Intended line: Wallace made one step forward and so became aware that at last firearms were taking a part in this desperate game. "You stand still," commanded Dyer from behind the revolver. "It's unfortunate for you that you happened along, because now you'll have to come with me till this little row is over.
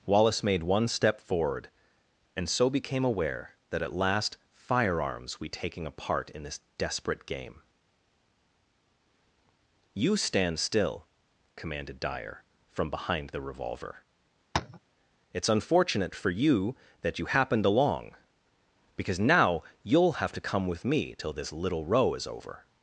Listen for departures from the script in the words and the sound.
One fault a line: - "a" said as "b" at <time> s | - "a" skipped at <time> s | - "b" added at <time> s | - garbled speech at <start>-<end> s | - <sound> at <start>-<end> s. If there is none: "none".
- "were" said as "we" at 5.4 s
- tap at 14.5-14.8 s